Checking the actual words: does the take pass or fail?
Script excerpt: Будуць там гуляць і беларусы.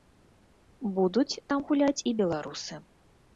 pass